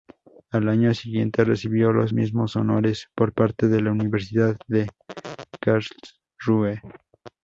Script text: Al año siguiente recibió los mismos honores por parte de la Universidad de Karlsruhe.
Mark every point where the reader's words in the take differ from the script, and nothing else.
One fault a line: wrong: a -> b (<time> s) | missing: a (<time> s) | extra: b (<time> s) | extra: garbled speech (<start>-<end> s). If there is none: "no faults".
no faults